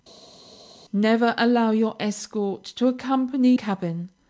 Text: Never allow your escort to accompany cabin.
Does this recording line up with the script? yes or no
yes